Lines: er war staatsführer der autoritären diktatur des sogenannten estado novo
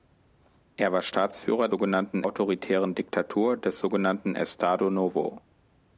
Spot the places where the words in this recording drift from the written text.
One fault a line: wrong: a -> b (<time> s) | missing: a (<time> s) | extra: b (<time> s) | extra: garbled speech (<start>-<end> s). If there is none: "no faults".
wrong: der -> sogenannten (1.7 s)